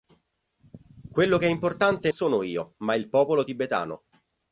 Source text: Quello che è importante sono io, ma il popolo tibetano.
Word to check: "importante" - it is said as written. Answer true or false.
true